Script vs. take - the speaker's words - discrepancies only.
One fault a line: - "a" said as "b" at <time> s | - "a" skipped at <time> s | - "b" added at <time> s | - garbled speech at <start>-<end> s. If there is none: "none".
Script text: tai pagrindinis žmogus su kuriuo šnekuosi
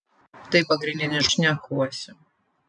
- "žmogus su kuriuo" skipped at 1.3 s